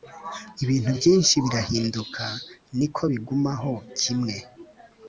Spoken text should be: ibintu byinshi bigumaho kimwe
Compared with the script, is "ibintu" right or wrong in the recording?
right